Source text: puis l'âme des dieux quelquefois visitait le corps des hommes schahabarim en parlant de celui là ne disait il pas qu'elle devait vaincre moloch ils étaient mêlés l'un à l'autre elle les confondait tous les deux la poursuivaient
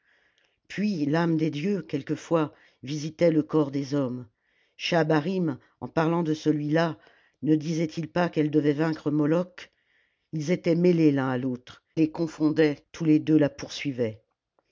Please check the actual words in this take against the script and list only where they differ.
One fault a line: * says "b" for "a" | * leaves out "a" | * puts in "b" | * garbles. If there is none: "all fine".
* leaves out "elle"